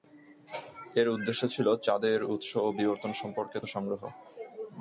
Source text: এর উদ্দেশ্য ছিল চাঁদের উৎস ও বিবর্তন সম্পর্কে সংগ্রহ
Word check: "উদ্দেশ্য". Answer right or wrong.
right